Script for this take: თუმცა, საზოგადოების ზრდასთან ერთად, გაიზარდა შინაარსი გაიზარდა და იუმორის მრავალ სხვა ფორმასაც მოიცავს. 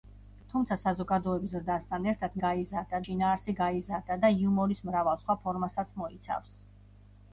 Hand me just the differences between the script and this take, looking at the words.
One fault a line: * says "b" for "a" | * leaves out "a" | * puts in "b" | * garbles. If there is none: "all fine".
all fine